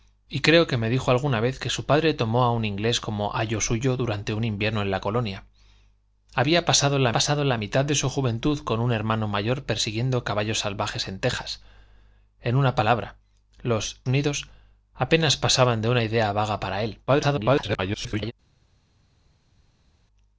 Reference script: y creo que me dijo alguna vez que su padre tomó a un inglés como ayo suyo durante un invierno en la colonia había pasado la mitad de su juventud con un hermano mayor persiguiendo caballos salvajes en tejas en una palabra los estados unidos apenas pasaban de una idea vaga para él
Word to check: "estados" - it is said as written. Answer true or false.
false